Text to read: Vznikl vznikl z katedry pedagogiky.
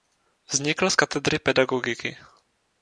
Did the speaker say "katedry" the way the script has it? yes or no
yes